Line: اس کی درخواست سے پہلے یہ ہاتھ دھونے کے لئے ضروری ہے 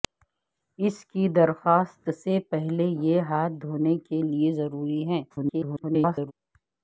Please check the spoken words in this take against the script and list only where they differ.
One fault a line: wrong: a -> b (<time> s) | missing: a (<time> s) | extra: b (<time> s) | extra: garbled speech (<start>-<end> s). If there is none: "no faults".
extra: garbled speech (5.3-6.3 s)